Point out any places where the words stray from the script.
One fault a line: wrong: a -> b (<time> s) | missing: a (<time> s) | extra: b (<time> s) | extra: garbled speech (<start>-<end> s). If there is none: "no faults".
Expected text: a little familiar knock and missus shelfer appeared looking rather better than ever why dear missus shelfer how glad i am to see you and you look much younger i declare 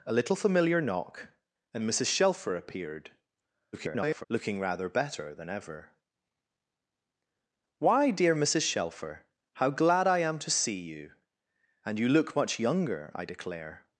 extra: garbled speech (3.7-4.3 s)